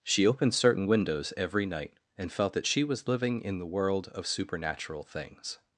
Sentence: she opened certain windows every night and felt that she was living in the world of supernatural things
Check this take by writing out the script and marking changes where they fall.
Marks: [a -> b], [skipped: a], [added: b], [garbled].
she opened certain windows every night and felt that she was living in the world of supernatural things